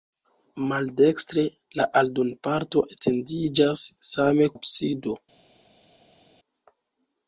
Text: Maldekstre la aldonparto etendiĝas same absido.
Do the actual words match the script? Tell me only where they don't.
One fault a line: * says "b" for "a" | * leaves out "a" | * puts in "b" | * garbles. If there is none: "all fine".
all fine